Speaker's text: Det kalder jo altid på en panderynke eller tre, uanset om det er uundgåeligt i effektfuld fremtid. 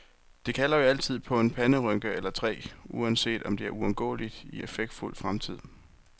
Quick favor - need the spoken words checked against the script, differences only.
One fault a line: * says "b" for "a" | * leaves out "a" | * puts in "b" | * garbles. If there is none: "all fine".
all fine